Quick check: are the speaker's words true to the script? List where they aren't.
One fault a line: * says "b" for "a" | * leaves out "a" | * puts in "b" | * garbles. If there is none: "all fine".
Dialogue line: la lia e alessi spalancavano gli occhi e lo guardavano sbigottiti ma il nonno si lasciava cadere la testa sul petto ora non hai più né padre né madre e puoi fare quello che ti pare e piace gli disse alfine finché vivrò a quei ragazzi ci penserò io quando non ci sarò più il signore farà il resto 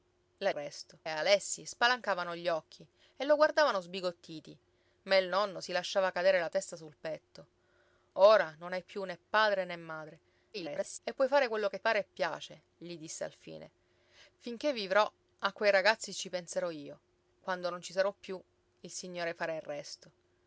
* says "resto" for "lia"
* garbles
* leaves out "ti"